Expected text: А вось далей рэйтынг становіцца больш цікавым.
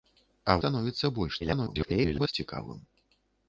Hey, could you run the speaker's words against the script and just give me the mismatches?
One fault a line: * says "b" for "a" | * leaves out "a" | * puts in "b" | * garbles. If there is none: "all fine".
* leaves out "вось далей рэйтынг"
* garbles